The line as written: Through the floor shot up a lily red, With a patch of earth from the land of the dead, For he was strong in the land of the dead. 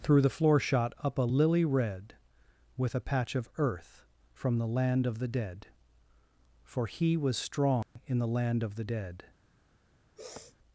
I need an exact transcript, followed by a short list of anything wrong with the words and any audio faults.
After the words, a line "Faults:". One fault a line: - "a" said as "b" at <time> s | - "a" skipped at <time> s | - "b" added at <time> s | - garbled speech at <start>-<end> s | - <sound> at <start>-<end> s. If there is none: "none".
Through the floor shot up a lily red, With a patch of earth from the land of the dead, For he was strong in the land of the dead.
Faults:
- dropout at 7.8-8.0 s
- sniff at 10.2-10.6 s